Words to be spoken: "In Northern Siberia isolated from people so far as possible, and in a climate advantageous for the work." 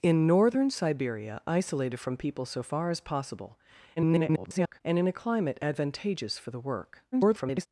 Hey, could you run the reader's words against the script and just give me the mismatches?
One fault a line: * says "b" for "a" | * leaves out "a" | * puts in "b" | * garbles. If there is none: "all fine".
* garbles
* garbles